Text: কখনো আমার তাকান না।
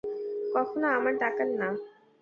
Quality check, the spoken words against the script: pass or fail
pass